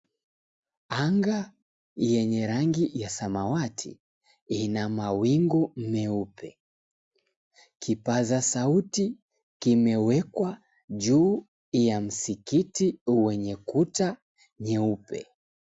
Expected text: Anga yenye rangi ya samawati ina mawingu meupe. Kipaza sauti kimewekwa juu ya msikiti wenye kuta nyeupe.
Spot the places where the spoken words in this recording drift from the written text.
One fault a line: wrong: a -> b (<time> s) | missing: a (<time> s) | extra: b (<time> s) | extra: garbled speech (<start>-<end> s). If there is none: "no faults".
no faults